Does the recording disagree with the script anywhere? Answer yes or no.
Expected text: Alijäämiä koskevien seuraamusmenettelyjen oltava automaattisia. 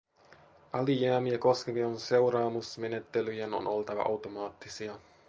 yes